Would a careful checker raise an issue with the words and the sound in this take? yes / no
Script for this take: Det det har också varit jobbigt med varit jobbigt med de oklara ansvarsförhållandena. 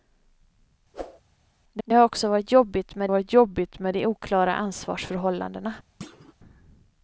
yes